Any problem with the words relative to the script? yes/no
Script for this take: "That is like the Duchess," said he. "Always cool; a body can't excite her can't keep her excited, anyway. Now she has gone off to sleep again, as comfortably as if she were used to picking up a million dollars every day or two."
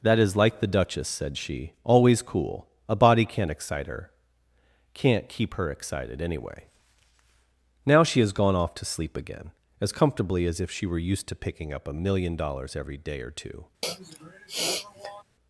yes